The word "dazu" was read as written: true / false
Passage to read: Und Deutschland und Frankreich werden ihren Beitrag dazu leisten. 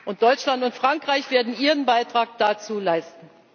true